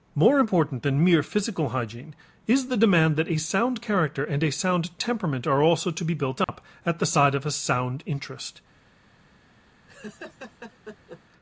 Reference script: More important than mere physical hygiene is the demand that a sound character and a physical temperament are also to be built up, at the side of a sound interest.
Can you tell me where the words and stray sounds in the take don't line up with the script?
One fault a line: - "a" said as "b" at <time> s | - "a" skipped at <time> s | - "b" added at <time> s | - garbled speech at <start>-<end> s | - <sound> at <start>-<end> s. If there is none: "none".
- "physical" said as "sound" at 4.5 s
- dropout at 6.4-6.5 s
- laugh at 9.9-11.2 s